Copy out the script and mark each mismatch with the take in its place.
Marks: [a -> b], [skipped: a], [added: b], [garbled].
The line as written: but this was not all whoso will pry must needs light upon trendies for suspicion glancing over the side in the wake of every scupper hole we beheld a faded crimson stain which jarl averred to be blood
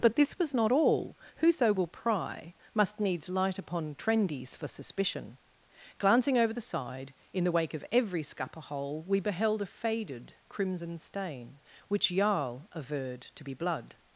but this was not all whoso will pry must needs light upon trendies for suspicion glancing over the side in the wake of every scupper hole we beheld a faded crimson stain which jarl averred to be blood